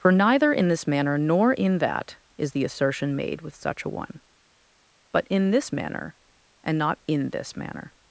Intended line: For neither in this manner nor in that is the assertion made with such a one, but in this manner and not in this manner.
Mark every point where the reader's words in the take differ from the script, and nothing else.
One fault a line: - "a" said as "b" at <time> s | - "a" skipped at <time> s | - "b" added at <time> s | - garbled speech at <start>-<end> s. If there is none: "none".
none